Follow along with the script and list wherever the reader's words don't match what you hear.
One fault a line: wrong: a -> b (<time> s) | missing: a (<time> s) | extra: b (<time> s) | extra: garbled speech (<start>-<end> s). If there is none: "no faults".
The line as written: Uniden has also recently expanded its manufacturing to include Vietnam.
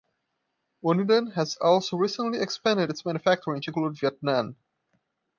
no faults